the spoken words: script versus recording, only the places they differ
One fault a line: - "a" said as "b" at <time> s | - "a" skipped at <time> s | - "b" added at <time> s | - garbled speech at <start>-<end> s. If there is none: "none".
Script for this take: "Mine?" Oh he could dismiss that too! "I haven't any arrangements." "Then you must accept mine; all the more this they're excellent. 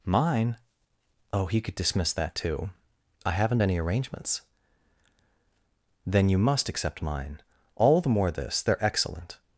none